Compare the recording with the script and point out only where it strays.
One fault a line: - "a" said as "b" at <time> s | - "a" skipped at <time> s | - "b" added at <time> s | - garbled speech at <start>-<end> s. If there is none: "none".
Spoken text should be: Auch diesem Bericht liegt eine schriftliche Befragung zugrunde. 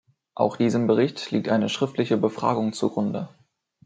none